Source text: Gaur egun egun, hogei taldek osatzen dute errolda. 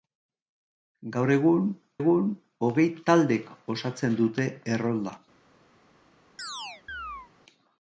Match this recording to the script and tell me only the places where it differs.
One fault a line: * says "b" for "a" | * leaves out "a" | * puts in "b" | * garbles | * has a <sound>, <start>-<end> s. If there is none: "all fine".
* has a chirp, 6.4-7.3 s